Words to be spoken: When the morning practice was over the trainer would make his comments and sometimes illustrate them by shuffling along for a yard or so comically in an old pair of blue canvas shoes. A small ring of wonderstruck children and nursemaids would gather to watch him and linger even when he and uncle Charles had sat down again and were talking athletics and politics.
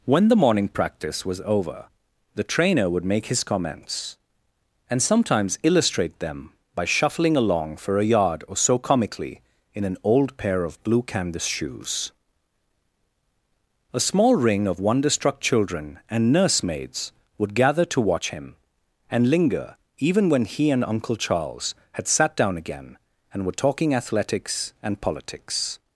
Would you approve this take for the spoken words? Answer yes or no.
yes